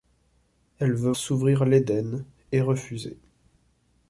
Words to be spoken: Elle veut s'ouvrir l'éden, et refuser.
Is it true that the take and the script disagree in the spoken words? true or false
false